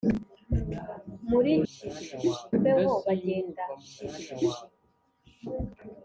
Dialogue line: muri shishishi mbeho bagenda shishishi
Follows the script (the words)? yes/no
yes